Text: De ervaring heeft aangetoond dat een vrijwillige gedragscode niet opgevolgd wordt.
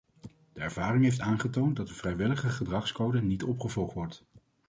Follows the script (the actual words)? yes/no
yes